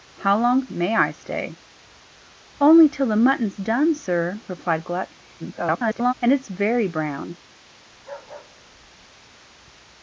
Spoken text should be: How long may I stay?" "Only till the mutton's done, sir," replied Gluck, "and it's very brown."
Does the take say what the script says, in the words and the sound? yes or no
no